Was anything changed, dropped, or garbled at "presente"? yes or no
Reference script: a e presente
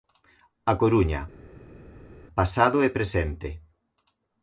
no